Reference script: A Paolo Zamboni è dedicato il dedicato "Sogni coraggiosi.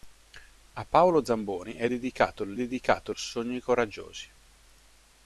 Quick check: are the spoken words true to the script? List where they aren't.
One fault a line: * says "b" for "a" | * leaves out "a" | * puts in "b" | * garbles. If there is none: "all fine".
all fine